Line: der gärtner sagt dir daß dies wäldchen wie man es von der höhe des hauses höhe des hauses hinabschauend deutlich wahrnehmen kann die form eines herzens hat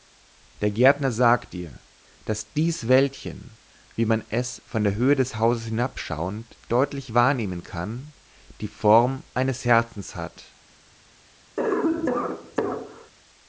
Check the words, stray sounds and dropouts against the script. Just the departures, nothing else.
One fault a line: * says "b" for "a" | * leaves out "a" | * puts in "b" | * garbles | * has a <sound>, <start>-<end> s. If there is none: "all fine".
* leaves out "höhe des hauses"
* has a cough, 11.6-13.1 s